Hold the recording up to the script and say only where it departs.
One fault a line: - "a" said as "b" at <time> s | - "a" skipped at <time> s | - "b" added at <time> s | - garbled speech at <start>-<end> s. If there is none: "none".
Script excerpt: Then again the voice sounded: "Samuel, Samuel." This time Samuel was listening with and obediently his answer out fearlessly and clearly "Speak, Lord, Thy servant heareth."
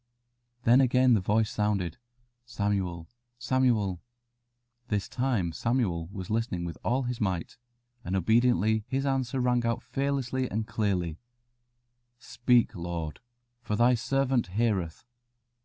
- "all his might" added at 6.9 s
- "rang" added at 9.4 s
- "for" added at 13.6 s